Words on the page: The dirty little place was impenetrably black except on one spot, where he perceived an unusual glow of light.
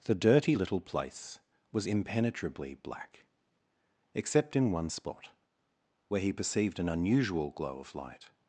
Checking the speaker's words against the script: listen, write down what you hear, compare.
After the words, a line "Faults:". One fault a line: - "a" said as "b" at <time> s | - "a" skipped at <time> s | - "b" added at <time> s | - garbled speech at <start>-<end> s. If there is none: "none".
The dirty little place was impenetrably black except in one spot, where he perceived an unusual glow of light.
Faults:
- "on" said as "in" at 4.5 s